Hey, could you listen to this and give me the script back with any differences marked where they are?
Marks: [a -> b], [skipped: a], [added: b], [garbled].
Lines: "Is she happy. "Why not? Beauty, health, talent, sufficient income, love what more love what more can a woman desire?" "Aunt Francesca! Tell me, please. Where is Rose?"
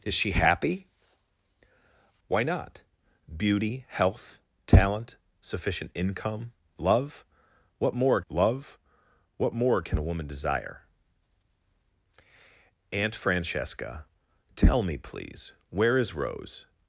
"Is she happy. "Why not? Beauty, health, talent, sufficient income, love what more love what more can a woman desire?" "Aunt Francesca! Tell me, please. Where is Rose?"